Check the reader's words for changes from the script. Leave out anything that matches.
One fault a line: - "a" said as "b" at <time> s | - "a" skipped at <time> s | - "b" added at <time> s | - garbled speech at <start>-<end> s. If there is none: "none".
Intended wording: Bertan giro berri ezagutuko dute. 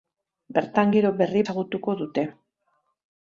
none